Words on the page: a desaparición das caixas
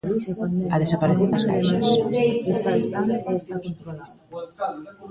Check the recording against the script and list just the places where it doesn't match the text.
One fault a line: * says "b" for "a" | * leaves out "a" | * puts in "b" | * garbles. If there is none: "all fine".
all fine